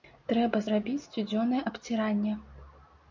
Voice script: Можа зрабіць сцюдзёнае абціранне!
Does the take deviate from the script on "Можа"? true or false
true